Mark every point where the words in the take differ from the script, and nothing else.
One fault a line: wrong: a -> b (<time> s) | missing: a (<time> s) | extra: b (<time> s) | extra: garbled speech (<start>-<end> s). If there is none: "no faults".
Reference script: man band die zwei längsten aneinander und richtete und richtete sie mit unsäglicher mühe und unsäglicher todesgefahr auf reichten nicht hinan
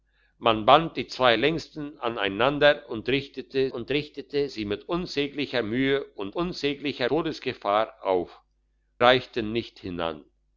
no faults